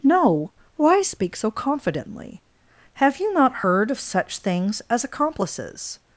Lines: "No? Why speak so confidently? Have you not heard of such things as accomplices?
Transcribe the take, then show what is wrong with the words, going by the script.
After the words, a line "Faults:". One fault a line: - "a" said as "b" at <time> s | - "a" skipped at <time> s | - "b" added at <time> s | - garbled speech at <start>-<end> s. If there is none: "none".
"No? Why speak so confidently? Have you not heard of such things as accomplices?
Faults:
none